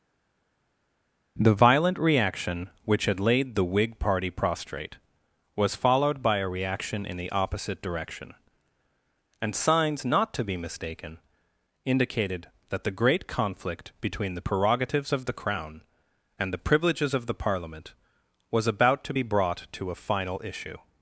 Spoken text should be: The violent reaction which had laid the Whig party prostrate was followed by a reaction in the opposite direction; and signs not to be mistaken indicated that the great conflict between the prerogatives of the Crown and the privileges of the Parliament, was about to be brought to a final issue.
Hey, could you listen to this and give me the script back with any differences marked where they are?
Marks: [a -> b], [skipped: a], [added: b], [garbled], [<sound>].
The violent reaction which had laid the Whig party prostrate was followed by a reaction in the opposite direction; and signs not to be mistaken indicated that the great conflict between the prerogatives of the Crown and the privileges of the Parliament, was about to be brought to a final issue.